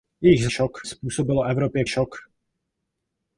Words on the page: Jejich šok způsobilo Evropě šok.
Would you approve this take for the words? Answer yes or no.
yes